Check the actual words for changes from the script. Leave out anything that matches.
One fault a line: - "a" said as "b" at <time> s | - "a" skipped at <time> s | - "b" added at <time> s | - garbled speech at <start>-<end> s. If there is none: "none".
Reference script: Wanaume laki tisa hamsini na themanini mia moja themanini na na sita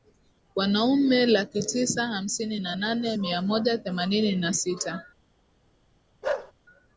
- "themanini" said as "nane" at 2.7 s
- "na" skipped at 4.5 s